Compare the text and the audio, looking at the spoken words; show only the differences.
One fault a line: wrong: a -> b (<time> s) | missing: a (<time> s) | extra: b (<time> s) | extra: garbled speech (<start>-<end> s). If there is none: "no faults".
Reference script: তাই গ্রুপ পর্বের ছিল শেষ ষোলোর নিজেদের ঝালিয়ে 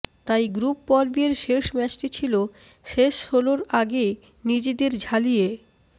extra: শেষ ম্যাচটি (1.4 s)
extra: আগে (3.8 s)